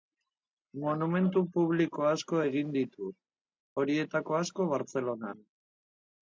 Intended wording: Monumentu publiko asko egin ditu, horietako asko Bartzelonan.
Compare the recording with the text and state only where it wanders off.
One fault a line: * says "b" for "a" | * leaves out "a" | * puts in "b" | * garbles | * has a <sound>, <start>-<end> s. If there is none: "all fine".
all fine